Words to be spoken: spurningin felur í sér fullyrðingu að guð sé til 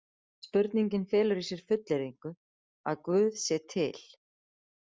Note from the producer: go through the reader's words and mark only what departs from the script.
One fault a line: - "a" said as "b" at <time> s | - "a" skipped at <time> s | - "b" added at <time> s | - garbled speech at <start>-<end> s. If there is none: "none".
none